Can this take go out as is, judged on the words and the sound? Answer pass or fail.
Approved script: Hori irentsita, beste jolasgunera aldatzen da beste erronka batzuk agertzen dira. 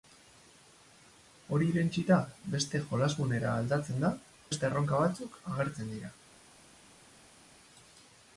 pass